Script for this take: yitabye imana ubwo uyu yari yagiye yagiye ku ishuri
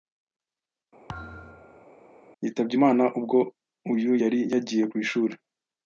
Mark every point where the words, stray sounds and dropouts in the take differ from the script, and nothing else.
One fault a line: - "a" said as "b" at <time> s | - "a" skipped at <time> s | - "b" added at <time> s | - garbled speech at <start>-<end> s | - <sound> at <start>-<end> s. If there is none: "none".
- thud at 1.1-1.9 s
- "yagiye" skipped at 4.8 s